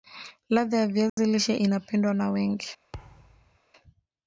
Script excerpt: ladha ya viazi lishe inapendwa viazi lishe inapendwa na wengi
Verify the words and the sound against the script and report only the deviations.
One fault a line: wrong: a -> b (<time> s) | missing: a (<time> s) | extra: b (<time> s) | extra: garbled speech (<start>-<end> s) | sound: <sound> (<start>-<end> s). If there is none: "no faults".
sound: dropout (1.1-1.2 s)
missing: viazi lishe inapendwa (2.1 s)
sound: thud (2.9-3.6 s)